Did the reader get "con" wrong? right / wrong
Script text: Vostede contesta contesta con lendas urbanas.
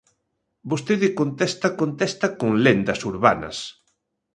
right